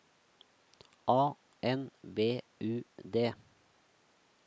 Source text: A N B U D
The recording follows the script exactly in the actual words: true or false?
true